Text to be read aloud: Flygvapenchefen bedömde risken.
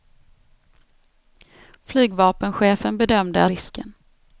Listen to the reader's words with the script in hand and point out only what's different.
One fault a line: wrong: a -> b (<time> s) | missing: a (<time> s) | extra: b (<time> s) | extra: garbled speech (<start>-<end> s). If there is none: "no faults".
no faults